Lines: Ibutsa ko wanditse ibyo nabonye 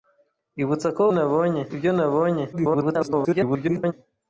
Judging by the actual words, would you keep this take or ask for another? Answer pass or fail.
fail